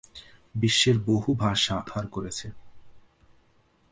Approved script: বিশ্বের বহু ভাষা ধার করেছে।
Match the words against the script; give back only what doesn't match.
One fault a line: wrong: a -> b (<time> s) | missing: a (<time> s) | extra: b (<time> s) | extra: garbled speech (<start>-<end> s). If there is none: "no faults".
no faults